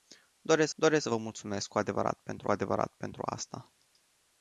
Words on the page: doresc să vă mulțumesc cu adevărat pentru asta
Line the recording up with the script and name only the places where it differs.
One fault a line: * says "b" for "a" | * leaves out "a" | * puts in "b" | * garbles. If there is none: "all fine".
* puts in "doresc"
* puts in "adevărat pentru"